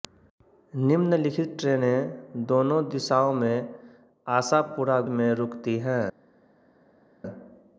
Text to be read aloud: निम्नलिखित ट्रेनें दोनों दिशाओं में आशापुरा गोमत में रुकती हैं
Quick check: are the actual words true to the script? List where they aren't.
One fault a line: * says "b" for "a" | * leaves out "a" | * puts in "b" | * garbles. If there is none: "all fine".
* leaves out "गोमत"